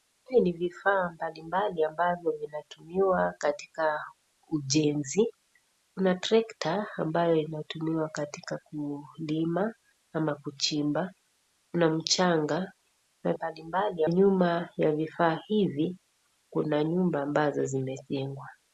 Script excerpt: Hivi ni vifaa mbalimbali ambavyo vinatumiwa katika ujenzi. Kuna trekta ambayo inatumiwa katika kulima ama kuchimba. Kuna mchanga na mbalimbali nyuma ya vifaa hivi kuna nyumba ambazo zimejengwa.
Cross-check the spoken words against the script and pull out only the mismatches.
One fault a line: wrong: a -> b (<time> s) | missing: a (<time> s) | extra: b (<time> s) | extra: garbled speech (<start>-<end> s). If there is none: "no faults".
no faults